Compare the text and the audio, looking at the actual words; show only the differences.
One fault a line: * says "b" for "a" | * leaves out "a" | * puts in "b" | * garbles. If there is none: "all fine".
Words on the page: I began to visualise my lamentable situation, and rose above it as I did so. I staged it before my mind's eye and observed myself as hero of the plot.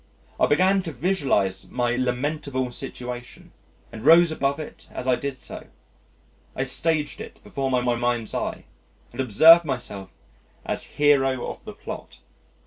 * puts in "my"